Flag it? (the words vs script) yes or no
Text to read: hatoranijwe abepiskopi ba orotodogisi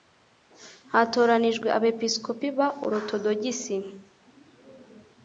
no